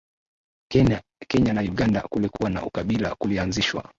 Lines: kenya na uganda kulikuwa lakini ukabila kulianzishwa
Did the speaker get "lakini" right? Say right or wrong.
wrong